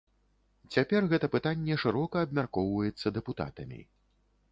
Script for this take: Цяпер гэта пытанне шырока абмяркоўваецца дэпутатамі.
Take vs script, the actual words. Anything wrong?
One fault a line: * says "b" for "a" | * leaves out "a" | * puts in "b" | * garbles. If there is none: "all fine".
all fine